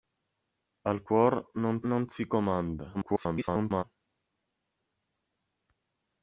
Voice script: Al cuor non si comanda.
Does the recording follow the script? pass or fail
fail